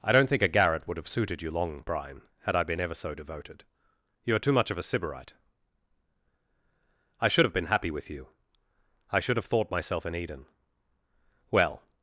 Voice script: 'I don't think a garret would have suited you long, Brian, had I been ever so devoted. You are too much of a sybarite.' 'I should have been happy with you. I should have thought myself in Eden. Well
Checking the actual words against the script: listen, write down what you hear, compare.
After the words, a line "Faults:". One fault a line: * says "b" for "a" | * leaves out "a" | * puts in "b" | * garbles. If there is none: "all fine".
'I don't think a garret would have suited you long, Brian, had I been ever so devoted. You are too much of a sybarite.' 'I should have been happy with you. I should have thought myself in Eden. Well
Faults:
all fine